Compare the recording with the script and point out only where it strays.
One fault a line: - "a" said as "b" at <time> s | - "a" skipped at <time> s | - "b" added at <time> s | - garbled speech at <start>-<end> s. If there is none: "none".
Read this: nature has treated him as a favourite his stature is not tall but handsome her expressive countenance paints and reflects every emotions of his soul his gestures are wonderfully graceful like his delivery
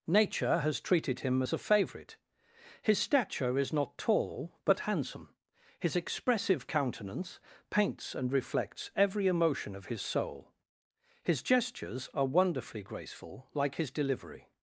- "her" said as "his" at 5.8 s
- "emotions" said as "emotion" at 9.3 s